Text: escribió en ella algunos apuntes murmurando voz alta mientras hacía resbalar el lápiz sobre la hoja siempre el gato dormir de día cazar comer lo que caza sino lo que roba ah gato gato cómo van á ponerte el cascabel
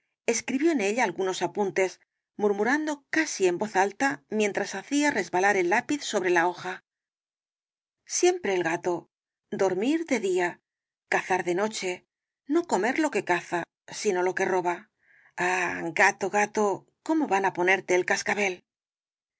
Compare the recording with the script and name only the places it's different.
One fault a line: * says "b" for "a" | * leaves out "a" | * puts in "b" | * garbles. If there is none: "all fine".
* puts in "casi en"
* puts in "de noche no"